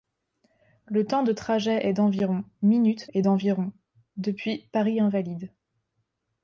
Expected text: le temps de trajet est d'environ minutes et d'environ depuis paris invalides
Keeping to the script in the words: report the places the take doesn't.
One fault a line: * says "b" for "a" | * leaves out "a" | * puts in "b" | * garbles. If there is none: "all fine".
all fine